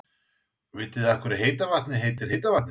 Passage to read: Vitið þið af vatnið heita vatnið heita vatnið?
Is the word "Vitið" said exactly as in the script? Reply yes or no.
yes